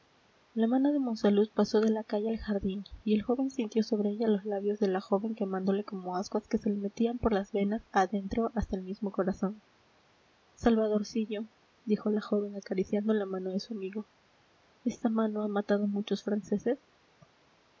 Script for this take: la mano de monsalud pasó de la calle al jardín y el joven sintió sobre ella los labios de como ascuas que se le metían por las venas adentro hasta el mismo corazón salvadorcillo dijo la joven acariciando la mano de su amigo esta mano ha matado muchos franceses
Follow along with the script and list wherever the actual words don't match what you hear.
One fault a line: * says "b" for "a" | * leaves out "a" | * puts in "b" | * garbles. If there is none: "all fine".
* puts in "la joven quemándole"